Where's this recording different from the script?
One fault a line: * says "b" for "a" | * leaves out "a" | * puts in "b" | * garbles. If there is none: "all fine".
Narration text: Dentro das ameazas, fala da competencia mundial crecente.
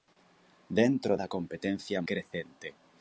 * leaves out "das ameazas fala"
* leaves out "mundial"